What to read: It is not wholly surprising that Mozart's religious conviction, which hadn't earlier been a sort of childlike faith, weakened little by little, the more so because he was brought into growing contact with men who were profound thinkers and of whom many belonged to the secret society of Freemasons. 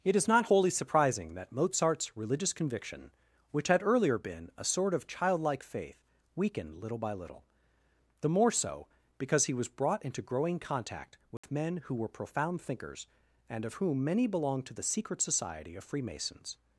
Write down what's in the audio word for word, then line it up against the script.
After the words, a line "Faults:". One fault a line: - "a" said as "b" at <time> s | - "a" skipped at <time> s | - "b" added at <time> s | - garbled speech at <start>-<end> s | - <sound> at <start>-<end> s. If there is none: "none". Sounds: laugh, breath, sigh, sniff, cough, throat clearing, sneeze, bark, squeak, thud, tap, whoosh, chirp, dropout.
It is not wholly surprising that Mozart's religious conviction, which had earlier been a sort of childlike faith, weakened little by little, the more so because he was brought into growing contact with men who were profound thinkers and of whom many belonged to the secret society of Freemasons.
Faults:
- "hadn't" said as "had" at 3.7 s
- dropout at 11.4-11.4 s